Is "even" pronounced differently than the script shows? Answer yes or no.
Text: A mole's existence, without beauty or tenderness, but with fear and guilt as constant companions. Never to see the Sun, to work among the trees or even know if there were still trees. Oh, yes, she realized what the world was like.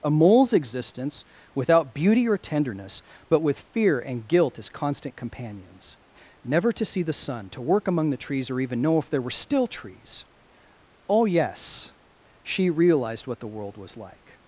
no